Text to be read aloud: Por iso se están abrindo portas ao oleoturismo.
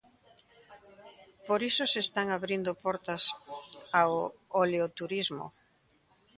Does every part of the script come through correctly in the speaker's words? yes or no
yes